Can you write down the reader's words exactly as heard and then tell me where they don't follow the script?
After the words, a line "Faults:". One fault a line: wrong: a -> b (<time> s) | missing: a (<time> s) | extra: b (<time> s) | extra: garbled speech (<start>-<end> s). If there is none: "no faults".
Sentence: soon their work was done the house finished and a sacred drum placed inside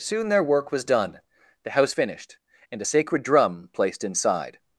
soon their work was done the house finished and a sacred drum placed inside
Faults:
no faults